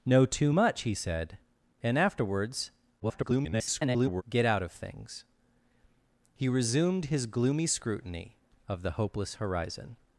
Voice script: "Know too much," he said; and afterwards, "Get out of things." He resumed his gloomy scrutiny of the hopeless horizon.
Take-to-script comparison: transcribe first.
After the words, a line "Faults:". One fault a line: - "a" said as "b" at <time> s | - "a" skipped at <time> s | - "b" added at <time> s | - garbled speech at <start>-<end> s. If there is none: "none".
"Know too much," he said; and afterwards, [garbled] "Get out of things." He resumed his gloomy scrutiny of the hopeless horizon.
Faults:
- garbled speech at 3.0-4.2 s